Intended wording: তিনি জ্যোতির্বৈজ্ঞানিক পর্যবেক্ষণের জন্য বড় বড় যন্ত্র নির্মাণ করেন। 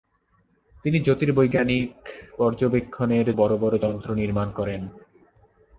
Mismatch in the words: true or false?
true